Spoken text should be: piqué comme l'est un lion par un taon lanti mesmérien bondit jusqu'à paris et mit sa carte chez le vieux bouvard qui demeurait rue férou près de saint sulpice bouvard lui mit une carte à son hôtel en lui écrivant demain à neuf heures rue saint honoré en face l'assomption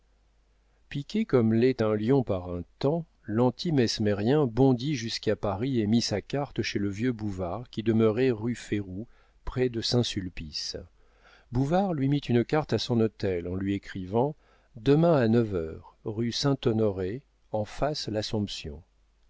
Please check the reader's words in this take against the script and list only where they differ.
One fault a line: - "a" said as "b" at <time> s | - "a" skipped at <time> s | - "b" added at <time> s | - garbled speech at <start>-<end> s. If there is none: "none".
none